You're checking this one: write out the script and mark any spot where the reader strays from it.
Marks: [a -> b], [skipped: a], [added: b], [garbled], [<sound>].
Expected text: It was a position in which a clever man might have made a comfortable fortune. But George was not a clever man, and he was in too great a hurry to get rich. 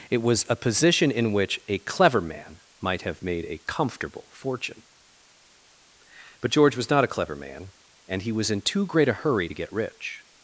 It was a position in which a clever man might have made a comfortable fortune. But George was not a clever man, and he was in too great a hurry to get rich.